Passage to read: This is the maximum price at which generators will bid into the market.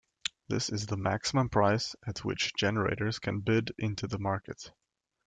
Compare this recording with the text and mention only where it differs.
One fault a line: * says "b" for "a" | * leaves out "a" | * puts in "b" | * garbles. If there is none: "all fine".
* says "can" for "will"